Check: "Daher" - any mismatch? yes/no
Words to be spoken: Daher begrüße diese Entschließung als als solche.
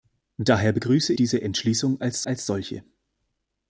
no